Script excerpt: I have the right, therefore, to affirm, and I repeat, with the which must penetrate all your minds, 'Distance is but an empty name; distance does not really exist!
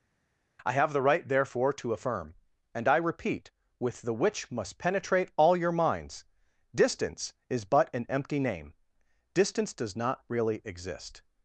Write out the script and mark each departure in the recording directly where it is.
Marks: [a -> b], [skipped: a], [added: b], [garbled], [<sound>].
I have the right, therefore, to affirm, and I repeat, with the which must penetrate all your minds, 'Distance is but an empty name; distance does not really exist!